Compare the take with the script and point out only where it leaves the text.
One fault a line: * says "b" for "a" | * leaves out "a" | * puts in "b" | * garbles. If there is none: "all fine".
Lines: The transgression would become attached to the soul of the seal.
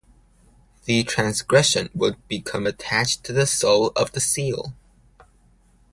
all fine